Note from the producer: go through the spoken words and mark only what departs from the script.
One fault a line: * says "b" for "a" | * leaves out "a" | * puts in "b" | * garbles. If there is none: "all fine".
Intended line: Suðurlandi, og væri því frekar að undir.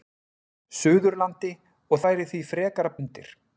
all fine